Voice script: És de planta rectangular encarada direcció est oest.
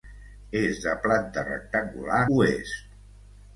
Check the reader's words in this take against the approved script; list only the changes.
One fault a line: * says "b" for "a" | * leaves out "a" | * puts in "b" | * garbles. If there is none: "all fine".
* leaves out "encarada direcció est"